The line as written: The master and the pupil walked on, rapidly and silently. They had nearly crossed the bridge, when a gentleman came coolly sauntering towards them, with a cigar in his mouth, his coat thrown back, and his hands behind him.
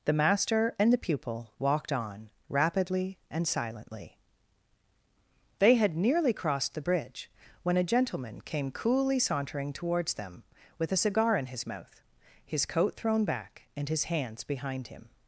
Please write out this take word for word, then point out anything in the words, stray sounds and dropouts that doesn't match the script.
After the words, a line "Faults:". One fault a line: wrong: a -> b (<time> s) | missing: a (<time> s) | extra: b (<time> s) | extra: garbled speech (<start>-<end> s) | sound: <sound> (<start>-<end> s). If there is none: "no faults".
The master and the pupil walked on, rapidly and silently. They had nearly crossed the bridge, when a gentleman came coolly sauntering towards them, with a cigar in his mouth, his coat thrown back, and his hands behind him.
Faults:
no faults